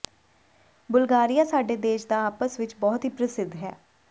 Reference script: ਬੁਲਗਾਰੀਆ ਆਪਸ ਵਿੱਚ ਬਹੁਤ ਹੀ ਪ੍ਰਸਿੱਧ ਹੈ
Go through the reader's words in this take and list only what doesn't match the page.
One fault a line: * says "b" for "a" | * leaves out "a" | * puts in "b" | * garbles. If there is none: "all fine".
* puts in "ਸਾਡੇ ਦੇਸ਼ ਦਾ"